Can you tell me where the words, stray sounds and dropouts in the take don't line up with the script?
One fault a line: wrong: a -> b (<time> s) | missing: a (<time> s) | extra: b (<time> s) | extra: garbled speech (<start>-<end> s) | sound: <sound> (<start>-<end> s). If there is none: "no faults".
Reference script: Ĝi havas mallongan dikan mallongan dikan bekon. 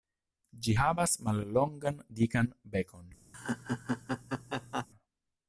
missing: mallongan dikan (2.5 s)
sound: laugh (3.3-4.9 s)